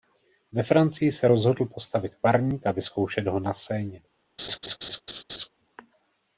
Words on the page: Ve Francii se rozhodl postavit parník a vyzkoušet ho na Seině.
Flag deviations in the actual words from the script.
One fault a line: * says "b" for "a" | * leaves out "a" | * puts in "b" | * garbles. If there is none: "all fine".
all fine